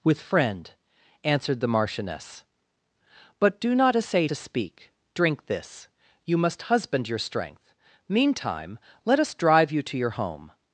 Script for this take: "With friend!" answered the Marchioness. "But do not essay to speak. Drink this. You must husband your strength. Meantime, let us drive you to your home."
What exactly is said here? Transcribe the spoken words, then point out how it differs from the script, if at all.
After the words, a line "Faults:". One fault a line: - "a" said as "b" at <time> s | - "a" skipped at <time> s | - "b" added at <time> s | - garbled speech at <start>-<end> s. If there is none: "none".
"With friend!" answered the Marchioness. "But do not essay to speak. Drink this. You must husband your strength. Meantime, let us drive you to your home."
Faults:
none